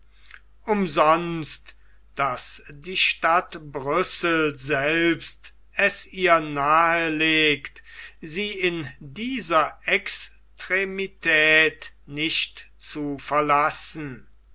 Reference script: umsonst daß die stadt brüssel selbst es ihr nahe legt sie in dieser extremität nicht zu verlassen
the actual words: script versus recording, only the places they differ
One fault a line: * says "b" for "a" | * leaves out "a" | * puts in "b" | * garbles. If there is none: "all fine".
all fine